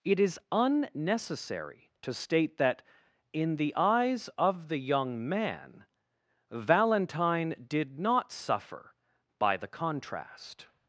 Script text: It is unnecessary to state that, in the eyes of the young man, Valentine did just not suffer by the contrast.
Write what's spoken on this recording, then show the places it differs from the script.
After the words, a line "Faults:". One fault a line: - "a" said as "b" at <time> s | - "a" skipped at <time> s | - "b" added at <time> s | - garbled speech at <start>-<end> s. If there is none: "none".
It is unnecessary to state that, in the eyes of the young man, Valentine did not suffer by the contrast.
Faults:
- "just" skipped at 8.0 s